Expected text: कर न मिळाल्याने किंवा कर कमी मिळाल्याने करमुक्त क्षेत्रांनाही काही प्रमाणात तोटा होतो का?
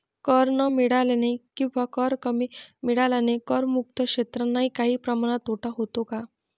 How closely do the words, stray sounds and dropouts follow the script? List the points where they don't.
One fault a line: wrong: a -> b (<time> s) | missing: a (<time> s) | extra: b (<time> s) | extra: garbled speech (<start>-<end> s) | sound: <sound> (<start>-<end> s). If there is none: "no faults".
no faults